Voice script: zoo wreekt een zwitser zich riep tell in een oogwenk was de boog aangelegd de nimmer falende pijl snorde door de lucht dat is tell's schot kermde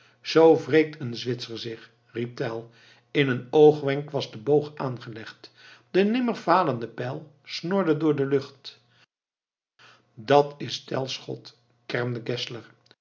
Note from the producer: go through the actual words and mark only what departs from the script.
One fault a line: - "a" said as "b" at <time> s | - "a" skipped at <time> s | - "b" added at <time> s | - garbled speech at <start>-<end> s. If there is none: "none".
none